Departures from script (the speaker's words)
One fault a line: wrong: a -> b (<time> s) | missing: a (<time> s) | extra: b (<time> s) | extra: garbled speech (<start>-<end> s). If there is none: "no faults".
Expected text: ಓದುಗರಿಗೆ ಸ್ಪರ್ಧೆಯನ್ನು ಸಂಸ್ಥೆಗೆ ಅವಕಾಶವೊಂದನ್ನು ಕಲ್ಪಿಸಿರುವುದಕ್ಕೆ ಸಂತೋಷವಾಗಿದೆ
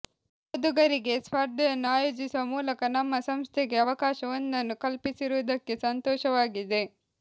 extra: ಆಯೋಜಿಸುವ ಮೂಲಕ ನಮ್ಮ (1.9 s)